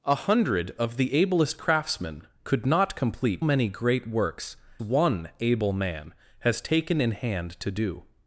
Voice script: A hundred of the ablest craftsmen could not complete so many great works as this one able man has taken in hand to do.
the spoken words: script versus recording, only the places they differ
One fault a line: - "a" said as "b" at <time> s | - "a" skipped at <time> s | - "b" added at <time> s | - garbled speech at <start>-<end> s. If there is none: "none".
- "so" skipped at 3.5 s
- "as this" skipped at 4.6 s